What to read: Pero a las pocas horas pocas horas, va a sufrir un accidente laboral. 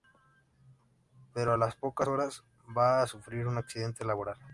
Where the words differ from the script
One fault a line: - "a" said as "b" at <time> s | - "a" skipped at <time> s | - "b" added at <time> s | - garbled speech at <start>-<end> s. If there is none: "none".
- "pocas horas" skipped at 2.4 s